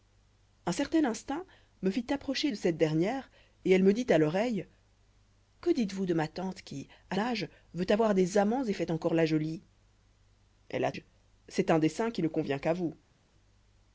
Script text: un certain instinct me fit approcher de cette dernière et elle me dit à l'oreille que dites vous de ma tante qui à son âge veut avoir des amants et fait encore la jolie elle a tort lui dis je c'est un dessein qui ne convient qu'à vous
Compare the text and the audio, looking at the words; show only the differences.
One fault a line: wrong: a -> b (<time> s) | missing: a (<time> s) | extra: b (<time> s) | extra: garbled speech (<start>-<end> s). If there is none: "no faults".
missing: son (7.2 s)
missing: tort lui dis (10.9 s)